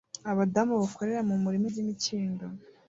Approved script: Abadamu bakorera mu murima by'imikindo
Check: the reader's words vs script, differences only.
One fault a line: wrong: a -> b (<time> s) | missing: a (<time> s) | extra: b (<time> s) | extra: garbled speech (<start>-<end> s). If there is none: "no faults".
no faults